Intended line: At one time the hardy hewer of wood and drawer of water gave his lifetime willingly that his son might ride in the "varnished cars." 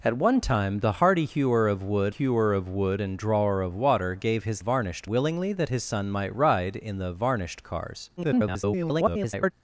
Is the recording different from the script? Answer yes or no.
yes